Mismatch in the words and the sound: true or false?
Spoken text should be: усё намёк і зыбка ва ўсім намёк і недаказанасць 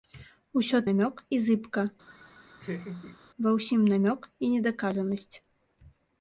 true